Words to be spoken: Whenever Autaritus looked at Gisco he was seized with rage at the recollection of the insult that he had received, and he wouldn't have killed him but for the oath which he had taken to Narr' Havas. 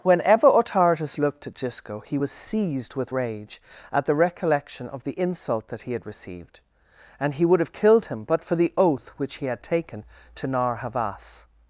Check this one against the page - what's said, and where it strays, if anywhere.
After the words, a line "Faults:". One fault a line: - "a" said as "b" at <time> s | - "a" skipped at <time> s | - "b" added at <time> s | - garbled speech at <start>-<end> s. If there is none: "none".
Whenever Autaritus looked at Gisco he was seized with rage at the recollection of the insult that he had received, and he would have killed him but for the oath which he had taken to Narr' Havas.
Faults:
- "wouldn't" said as "would" at 7.4 s